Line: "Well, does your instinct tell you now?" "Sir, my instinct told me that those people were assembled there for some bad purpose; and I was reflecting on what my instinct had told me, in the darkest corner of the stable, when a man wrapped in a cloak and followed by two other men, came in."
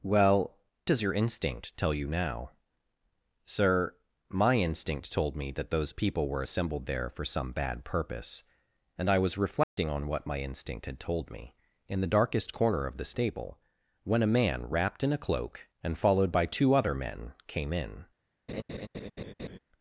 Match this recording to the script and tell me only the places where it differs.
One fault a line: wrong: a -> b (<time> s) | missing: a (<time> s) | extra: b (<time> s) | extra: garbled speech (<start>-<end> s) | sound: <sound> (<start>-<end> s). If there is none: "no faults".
sound: dropout (9.6-9.8 s)
sound: laugh (18.5-19.6 s)